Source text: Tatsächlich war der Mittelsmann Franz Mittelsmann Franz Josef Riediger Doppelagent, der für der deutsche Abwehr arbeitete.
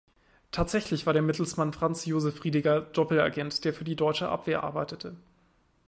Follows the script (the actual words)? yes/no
no